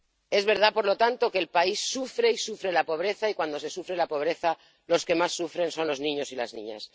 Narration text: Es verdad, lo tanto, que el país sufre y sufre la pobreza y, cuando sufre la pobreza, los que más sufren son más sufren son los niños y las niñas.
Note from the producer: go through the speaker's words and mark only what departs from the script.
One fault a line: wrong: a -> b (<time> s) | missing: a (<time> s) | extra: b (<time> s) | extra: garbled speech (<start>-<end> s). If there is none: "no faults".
extra: por (0.7 s)
extra: se (3.6 s)
missing: más sufren son (5.9 s)